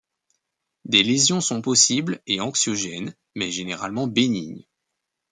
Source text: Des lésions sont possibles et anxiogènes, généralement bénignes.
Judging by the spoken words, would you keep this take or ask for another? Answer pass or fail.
fail